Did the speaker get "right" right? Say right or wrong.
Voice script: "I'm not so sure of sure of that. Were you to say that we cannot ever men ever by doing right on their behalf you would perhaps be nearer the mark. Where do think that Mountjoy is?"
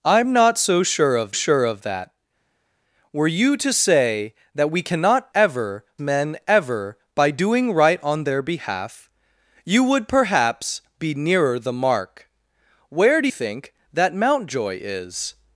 right